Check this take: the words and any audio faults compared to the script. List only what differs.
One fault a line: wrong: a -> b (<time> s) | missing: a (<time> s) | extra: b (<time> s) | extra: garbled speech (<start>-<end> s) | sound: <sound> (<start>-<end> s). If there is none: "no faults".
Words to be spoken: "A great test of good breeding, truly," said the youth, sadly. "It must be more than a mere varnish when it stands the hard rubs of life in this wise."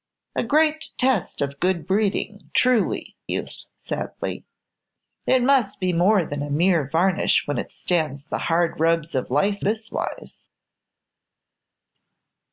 missing: said the (3.1 s)
missing: in (9.7 s)